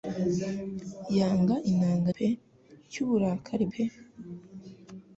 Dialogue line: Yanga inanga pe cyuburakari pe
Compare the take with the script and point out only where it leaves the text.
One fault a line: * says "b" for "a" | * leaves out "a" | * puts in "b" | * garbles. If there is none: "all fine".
all fine